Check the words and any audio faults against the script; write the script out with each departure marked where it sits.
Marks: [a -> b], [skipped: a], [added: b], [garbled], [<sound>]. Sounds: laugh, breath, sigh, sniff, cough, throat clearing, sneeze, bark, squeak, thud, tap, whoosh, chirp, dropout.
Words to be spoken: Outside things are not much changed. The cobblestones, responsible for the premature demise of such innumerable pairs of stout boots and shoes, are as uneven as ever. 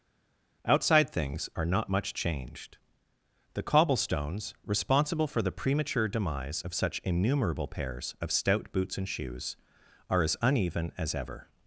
Outside things are not much changed. The cobblestones, responsible for the premature demise of such innumerable pairs of stout boots and shoes, are as uneven as ever.